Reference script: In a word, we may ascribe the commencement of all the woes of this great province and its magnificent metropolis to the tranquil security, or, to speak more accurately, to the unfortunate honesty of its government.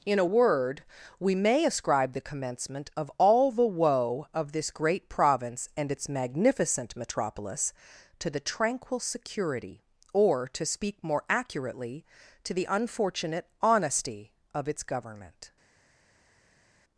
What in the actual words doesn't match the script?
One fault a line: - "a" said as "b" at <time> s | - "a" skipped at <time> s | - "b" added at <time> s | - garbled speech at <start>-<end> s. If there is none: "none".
- "woes" said as "woe" at 3.7 s